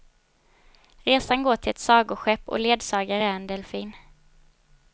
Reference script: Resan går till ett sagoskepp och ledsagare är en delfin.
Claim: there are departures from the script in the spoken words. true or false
false